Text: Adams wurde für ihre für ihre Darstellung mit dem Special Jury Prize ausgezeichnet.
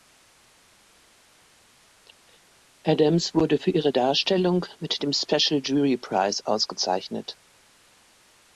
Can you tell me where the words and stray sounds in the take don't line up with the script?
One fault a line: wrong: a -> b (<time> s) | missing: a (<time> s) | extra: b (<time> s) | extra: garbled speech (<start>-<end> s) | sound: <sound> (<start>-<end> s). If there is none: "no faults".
missing: für ihre (3.9 s)